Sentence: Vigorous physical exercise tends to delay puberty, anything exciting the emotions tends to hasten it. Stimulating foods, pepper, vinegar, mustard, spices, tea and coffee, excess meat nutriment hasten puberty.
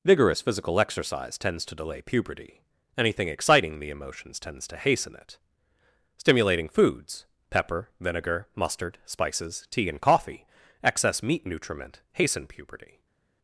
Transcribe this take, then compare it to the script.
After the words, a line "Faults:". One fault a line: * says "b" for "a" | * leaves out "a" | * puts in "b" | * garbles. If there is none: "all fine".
Vigorous physical exercise tends to delay puberty, anything exciting the emotions tends to hasten it. Stimulating foods, pepper, vinegar, mustard, spices, tea and coffee, excess meat nutriment hasten puberty.
Faults:
all fine